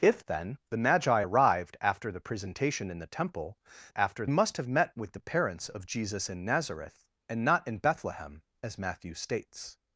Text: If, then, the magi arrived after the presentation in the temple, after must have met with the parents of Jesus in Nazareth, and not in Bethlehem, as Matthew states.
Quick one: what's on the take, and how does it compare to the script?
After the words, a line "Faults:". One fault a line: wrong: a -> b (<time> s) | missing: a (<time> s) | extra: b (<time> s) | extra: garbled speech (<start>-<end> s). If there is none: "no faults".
If, then, the magi arrived after the presentation in the temple, after must have met with the parents of Jesus in Nazareth, and not in Bethlehem, as Matthew states.
Faults:
no faults